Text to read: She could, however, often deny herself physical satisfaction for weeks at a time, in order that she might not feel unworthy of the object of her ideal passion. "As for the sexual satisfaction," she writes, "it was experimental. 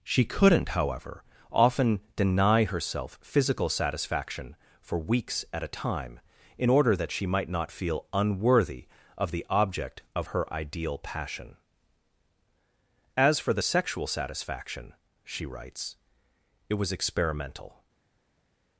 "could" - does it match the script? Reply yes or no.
no